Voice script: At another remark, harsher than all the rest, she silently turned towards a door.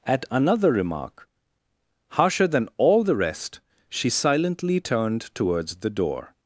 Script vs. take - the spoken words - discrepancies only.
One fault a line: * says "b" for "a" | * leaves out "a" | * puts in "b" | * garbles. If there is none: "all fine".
* says "the" for "a"